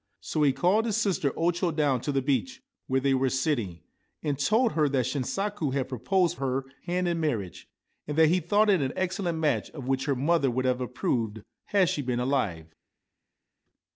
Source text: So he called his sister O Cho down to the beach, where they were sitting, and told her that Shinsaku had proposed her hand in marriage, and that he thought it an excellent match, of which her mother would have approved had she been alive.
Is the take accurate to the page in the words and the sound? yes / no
yes